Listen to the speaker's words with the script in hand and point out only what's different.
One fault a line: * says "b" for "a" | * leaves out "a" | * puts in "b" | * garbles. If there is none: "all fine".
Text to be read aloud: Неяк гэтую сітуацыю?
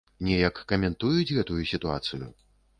* puts in "каментуюць"